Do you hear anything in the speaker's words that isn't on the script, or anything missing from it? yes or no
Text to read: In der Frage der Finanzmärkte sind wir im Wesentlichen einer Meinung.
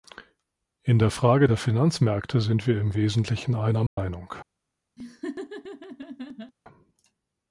no